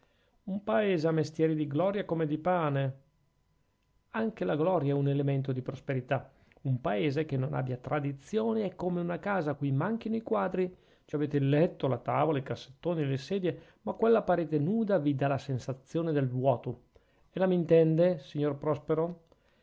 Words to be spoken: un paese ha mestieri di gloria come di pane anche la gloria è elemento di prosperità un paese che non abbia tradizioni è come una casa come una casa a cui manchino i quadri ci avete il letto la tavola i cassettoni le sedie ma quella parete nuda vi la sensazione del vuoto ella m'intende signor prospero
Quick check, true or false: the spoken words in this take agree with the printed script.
false